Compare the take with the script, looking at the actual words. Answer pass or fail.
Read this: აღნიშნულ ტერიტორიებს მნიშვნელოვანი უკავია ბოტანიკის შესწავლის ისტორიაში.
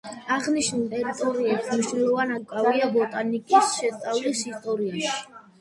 pass